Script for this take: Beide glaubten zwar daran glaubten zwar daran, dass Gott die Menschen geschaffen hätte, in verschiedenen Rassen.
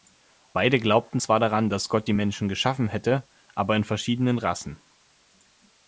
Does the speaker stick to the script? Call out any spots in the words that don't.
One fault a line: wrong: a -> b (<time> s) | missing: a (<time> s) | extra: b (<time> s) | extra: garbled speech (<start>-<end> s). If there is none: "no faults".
missing: glaubten zwar daran (1.7 s)
extra: aber (3.5 s)